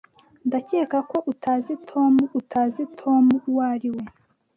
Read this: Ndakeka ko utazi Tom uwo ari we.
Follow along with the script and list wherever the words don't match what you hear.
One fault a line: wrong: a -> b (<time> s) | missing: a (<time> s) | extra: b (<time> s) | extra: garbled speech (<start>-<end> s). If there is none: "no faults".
extra: utazi Tom (2.4 s)